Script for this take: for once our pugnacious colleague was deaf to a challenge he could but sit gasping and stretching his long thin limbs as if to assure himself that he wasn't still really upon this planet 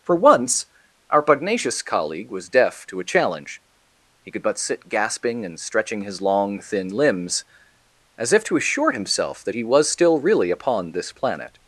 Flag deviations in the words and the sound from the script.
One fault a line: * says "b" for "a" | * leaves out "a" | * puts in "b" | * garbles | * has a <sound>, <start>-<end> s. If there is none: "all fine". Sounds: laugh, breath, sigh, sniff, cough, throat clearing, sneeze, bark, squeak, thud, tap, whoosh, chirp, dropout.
* says "was" for "wasn't"